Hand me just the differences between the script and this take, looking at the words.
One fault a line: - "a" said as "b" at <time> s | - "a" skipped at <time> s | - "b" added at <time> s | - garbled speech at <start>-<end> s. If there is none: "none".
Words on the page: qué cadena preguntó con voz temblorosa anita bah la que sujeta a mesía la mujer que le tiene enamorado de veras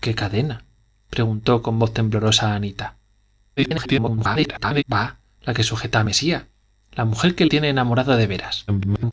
- garbled speech at 3.6-4.8 s
- "le" skipped at 7.5 s
- garbled speech at 8.7-9.1 s